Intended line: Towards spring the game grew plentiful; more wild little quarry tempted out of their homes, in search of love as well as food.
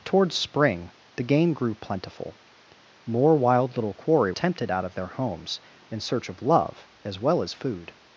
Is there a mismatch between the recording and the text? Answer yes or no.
no